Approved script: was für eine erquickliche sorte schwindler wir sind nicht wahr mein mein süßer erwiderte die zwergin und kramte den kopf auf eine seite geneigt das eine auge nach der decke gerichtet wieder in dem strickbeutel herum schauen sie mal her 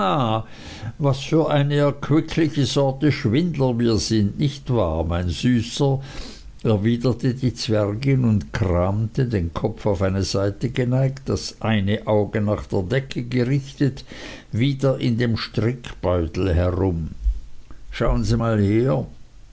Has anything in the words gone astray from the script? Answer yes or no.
yes